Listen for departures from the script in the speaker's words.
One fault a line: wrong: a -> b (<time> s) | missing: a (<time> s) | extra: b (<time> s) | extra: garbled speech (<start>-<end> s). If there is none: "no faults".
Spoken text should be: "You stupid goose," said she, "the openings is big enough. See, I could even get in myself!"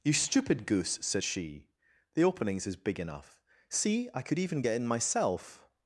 no faults